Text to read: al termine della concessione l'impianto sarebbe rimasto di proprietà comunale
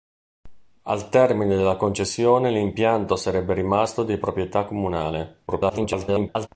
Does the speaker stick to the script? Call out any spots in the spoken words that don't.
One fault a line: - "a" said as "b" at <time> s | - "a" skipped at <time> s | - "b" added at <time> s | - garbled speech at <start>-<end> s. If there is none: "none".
- garbled speech at 5.5-6.5 s